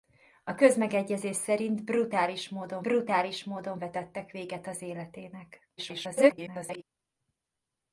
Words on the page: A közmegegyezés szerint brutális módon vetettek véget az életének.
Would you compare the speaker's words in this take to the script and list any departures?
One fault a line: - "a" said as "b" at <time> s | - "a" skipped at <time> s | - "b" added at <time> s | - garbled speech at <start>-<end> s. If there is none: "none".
- "brutális módon" added at 2.8 s
- garbled speech at 5.8-6.8 s